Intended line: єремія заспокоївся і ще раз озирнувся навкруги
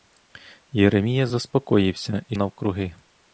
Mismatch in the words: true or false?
true